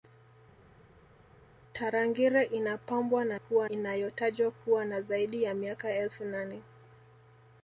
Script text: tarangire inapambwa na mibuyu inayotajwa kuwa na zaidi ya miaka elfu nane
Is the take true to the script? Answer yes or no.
no